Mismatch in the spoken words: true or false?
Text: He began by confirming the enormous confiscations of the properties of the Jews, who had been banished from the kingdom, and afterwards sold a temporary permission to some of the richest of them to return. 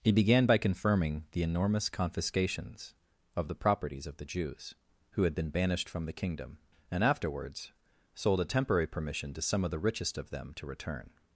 false